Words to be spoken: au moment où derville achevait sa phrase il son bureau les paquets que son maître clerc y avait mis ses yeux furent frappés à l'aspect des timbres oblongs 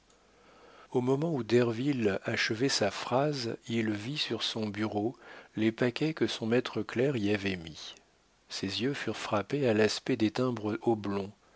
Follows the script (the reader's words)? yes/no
no